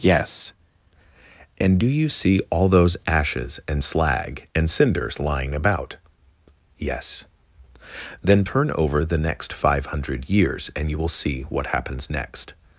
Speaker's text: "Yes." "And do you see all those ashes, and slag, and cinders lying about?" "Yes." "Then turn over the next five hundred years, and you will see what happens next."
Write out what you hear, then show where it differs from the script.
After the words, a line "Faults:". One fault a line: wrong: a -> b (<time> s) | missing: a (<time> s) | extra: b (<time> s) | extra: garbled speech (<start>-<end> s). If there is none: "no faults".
"Yes." "And do you see all those ashes, and slag, and cinders lying about?" "Yes." "Then turn over the next five hundred years, and you will see what happens next."
Faults:
no faults